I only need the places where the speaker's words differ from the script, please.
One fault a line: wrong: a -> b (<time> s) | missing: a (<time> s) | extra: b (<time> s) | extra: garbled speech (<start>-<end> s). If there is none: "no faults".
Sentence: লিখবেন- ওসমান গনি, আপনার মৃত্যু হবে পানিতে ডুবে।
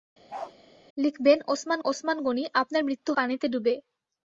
extra: ওসমান (1.8 s)
missing: হবে (3.1 s)